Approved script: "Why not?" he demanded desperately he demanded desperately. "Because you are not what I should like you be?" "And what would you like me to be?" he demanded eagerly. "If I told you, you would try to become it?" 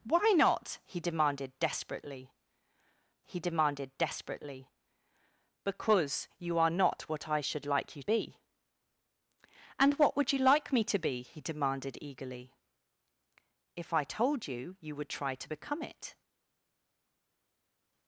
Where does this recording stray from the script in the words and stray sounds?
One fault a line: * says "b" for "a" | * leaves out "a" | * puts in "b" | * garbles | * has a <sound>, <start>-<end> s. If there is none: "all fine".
all fine